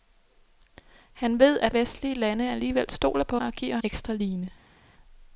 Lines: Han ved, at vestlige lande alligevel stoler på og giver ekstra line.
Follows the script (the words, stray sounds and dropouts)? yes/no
yes